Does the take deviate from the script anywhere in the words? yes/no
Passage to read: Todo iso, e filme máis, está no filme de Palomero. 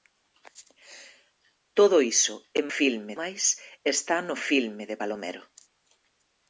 no